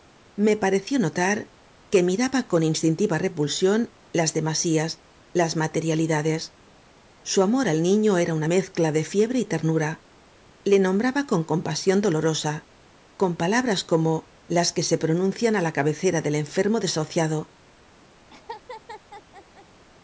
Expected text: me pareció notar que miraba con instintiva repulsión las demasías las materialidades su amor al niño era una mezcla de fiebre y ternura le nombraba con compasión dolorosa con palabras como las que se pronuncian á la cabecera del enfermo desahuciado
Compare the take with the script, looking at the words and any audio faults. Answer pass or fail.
fail